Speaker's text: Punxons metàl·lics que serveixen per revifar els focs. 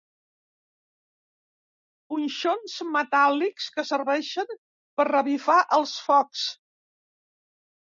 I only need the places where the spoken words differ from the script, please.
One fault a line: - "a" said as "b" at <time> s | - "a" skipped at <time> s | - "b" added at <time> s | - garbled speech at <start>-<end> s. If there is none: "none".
none